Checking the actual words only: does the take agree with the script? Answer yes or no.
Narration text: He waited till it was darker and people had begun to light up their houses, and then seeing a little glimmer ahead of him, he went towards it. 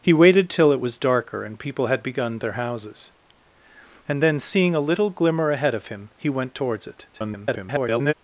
no